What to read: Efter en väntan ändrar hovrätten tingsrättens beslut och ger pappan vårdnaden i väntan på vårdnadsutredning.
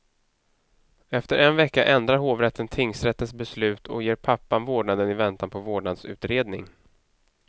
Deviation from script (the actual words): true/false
true